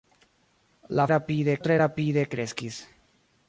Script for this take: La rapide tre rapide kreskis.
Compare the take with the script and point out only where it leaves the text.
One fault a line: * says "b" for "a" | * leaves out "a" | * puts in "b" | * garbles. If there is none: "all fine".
all fine